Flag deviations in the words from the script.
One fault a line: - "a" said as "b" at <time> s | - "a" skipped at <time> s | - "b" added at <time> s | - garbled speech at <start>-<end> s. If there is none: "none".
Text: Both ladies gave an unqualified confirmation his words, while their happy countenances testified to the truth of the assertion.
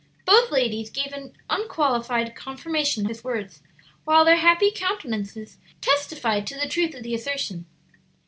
none